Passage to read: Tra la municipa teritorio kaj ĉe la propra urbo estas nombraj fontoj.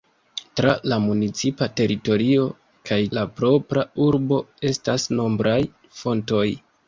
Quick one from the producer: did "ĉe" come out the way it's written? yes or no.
no